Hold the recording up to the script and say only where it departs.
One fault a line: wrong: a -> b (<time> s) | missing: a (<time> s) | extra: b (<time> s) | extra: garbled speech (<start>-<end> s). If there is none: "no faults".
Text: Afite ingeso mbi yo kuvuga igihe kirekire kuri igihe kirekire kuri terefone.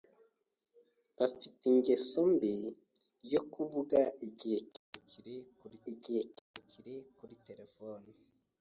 no faults